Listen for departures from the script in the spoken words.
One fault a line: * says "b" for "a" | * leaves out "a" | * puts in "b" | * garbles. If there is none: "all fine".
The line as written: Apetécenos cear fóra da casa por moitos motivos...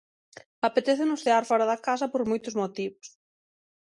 all fine